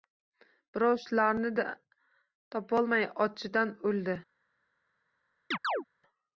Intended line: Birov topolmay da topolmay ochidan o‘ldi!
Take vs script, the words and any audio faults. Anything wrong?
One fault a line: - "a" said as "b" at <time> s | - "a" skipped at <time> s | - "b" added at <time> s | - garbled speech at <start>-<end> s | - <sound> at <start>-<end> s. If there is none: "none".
- "topolmay" said as "shularni" at 1.0 s
- chirp at 5.5-5.8 s